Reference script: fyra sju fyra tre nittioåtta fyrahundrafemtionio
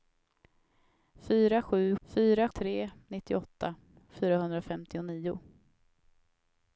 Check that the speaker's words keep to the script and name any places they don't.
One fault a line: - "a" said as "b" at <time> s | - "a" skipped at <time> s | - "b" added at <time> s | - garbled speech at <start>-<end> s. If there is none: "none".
none